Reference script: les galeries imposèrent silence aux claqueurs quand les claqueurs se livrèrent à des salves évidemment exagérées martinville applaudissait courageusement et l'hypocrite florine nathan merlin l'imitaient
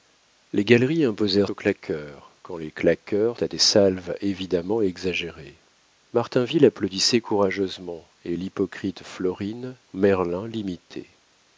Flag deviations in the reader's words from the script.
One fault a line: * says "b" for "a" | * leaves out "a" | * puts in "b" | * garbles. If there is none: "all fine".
* leaves out "silence"
* leaves out "se livrèrent"
* leaves out "nathan"